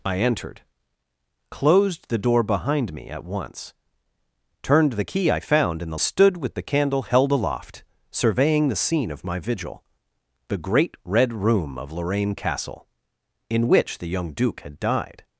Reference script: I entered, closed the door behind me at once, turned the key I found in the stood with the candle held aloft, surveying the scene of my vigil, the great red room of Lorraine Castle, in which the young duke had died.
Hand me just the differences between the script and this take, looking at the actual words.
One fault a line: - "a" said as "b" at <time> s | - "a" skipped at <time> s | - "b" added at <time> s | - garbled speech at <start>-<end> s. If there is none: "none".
none